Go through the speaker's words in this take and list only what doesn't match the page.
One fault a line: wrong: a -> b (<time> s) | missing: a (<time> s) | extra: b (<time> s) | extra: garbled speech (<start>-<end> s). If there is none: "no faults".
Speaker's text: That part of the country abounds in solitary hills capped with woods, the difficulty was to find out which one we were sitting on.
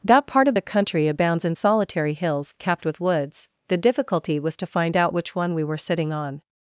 no faults